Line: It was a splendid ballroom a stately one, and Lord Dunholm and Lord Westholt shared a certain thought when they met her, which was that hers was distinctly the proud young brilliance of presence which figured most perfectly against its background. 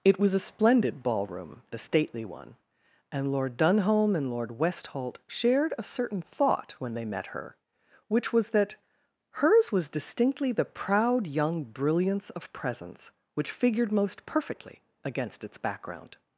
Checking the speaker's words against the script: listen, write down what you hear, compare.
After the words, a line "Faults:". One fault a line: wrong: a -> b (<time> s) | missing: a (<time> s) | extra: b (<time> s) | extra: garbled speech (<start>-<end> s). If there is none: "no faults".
It was a splendid ballroom a stately one, and Lord Dunholm and Lord Westholt shared a certain thought when they met her, which was that hers was distinctly the proud young brilliance of presence which figured most perfectly against its background.
Faults:
no faults